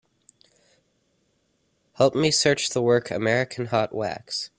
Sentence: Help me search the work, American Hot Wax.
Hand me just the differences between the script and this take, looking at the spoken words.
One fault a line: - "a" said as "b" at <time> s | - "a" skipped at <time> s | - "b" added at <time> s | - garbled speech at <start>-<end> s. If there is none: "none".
none